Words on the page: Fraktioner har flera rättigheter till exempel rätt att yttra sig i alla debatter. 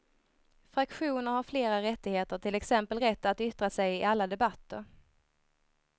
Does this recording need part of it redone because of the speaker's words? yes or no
no